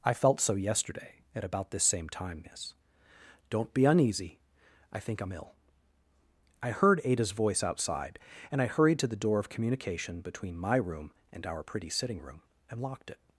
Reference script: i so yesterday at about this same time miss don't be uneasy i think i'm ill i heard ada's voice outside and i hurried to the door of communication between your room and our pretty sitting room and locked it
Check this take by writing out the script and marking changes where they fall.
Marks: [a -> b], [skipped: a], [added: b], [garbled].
i [added: felt] so yesterday at about this same time miss don't be uneasy i think i'm ill i heard ada's voice outside and i hurried to the door of communication between [your -> my] room and our pretty sitting room and locked it